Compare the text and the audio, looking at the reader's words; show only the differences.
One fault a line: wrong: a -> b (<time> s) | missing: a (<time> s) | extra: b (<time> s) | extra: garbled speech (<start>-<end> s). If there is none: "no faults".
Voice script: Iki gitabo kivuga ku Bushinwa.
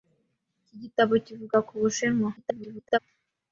extra: garbled speech (2.4-3.0 s)